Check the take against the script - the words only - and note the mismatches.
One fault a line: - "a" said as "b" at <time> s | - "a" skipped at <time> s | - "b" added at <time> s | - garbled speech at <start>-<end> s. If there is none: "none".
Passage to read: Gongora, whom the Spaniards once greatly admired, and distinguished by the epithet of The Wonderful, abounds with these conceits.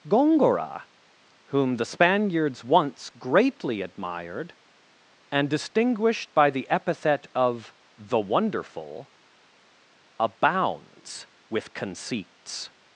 - "these" skipped at 11.7 s